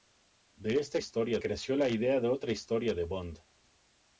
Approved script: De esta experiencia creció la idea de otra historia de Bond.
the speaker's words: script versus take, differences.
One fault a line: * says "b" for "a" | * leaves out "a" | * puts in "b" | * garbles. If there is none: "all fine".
* says "historia" for "experiencia"